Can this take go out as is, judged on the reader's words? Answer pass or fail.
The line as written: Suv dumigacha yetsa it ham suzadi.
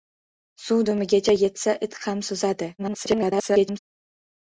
fail